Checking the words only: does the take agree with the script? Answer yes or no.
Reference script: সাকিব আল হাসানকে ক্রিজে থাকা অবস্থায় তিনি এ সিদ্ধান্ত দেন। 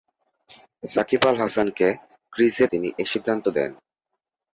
no